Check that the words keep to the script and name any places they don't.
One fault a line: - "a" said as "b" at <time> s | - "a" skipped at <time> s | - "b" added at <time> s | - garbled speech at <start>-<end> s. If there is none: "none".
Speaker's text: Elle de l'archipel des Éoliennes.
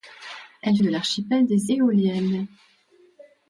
none